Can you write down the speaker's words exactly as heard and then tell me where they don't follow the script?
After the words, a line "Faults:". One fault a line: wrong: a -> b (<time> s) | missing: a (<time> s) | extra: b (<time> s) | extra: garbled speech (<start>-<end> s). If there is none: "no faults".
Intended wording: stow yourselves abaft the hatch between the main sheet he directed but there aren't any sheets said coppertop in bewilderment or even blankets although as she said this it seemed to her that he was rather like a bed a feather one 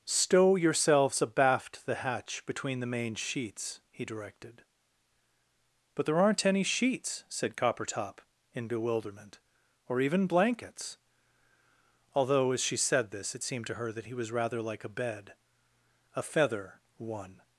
stow yourselves abaft the hatch between the main sheets he directed but there aren't any sheets said coppertop in bewilderment or even blankets although as she said this it seemed to her that he was rather like a bed a feather one
Faults:
wrong: sheet -> sheets (3.1 s)